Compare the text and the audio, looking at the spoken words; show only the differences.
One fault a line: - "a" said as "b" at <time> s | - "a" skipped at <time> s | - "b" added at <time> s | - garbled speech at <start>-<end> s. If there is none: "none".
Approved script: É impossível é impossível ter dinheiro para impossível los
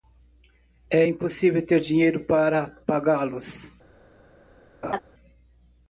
- "é impossível" skipped at 1.7 s
- "impossível" said as "pagá" at 2.9 s